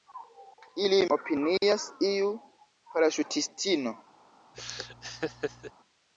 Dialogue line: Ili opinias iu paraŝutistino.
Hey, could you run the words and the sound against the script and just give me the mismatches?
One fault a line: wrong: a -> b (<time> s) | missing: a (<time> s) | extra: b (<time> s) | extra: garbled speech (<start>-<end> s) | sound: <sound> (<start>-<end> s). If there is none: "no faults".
sound: laugh (4.5-5.7 s)